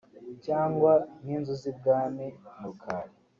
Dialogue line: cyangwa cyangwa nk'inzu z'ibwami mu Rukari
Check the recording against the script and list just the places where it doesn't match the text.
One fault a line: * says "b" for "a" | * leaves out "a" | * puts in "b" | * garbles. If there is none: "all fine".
* leaves out "cyangwa"